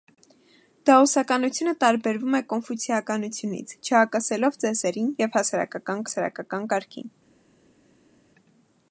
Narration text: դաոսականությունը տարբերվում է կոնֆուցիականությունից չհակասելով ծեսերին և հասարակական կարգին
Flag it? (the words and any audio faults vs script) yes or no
yes